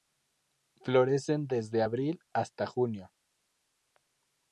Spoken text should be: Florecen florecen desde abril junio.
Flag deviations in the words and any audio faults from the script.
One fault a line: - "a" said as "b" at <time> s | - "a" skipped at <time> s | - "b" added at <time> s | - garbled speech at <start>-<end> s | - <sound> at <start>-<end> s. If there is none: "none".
- "florecen" skipped at 1.4 s
- "hasta" added at 2.3 s